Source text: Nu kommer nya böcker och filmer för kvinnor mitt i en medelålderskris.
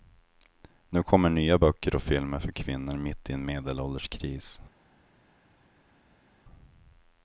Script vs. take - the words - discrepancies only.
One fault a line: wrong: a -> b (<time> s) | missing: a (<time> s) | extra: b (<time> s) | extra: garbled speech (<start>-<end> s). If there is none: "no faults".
no faults